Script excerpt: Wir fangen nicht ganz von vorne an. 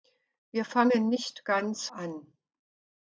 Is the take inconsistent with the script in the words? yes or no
yes